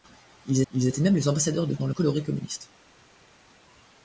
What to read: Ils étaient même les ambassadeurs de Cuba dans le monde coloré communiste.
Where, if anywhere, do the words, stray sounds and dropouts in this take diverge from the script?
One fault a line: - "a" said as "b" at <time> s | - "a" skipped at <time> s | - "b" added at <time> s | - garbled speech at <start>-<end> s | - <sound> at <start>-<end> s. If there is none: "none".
- "ils" added at 0.7 s
- "Cuba" skipped at 1.7 s
- "monde" skipped at 1.9 s